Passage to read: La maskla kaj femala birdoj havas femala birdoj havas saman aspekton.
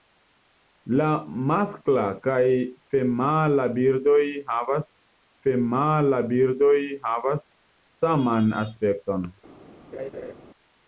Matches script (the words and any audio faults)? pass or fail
fail